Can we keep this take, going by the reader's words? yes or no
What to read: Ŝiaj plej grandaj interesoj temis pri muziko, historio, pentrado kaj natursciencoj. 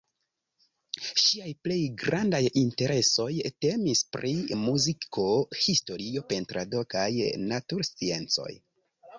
yes